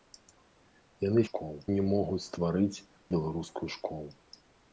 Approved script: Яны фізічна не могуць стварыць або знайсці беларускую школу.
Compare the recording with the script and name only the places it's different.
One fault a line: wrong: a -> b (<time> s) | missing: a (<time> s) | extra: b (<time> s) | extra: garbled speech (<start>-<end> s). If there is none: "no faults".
wrong: фізічна -> школу (1.3 s)
missing: або знайсці (2.8 s)